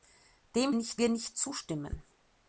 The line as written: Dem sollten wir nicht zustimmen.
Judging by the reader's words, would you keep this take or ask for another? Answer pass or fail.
fail